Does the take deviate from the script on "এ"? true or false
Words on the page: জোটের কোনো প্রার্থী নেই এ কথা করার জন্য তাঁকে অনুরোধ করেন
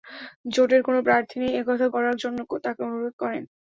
false